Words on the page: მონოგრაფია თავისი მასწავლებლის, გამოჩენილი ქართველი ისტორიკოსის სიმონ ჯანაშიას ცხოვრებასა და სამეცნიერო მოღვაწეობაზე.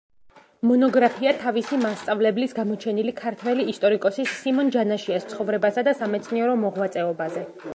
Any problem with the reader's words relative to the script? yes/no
no